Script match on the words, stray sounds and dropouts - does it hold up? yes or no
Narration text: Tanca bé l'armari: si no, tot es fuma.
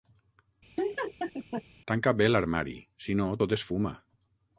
no